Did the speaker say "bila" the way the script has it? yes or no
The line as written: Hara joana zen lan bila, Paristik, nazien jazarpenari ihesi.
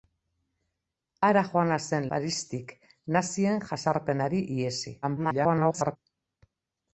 no